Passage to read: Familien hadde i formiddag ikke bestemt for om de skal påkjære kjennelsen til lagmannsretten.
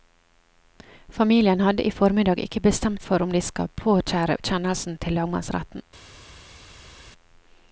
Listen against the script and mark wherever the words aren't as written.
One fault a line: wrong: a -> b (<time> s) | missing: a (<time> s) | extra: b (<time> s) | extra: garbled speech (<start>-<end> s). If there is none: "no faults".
no faults